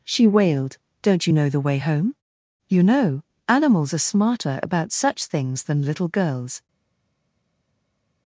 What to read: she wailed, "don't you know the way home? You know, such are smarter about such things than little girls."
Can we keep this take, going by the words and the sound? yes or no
no